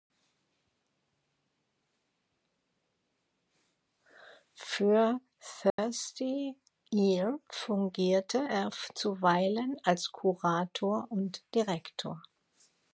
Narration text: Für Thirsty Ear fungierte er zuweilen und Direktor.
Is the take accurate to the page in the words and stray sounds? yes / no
no